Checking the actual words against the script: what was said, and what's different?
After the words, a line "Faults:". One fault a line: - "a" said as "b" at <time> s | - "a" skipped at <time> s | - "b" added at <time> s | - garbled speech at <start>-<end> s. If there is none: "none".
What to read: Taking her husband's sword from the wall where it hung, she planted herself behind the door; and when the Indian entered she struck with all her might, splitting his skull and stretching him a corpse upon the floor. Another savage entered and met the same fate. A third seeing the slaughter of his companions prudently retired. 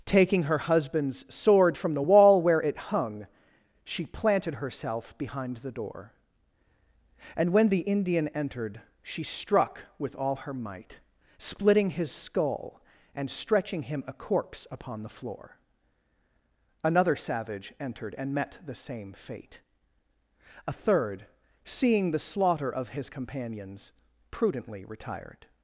Taking her husband's sword from the wall where it hung, she planted herself behind the door; and when the Indian entered she struck with all her might, splitting his skull and stretching him a corpse upon the floor. Another savage entered and met the same fate. A third seeing the slaughter of his companions prudently retired.
Faults:
none